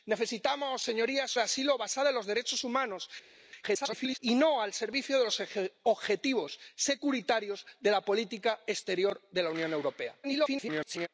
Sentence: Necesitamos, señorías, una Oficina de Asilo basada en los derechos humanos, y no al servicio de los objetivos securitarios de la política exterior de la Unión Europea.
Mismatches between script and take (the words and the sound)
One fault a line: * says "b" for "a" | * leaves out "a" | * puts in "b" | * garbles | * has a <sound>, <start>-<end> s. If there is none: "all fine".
* leaves out "una Oficina"
* garbles
* garbles